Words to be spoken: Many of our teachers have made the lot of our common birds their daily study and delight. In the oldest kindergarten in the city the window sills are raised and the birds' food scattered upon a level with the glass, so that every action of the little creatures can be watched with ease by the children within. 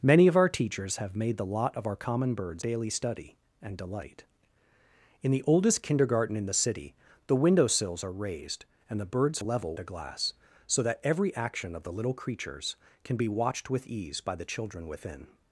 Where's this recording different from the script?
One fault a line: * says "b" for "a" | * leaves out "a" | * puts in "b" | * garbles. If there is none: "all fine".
* leaves out "their"
* leaves out "food scattered upon"
* leaves out "with"